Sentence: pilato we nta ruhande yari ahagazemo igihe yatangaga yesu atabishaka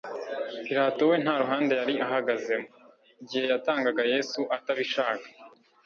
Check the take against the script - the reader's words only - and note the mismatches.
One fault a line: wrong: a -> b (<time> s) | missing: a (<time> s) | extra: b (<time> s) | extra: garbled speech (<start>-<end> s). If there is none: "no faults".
no faults